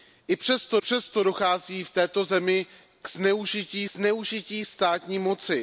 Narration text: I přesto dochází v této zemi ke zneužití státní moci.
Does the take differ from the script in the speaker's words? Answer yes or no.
yes